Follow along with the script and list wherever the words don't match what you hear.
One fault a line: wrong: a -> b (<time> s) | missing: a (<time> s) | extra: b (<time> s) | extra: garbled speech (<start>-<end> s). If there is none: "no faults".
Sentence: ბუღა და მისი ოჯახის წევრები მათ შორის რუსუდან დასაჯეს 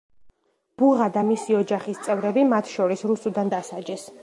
no faults